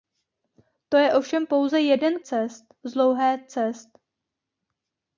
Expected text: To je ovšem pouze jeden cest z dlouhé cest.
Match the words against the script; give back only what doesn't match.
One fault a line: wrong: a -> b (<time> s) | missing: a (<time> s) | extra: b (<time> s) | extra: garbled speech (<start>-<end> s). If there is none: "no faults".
no faults